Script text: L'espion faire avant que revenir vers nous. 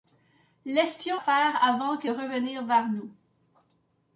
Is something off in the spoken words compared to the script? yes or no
no